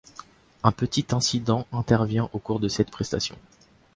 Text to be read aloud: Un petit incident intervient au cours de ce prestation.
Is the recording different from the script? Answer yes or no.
yes